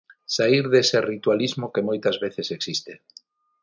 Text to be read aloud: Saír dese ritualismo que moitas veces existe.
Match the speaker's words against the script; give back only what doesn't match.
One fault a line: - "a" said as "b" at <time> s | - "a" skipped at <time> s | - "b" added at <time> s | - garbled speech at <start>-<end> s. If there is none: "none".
none